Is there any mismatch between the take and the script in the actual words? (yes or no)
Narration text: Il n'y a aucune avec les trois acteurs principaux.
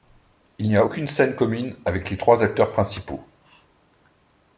yes